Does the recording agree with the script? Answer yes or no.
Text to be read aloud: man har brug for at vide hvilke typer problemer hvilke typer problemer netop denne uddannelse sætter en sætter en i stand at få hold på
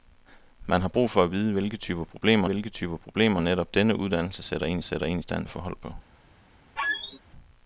yes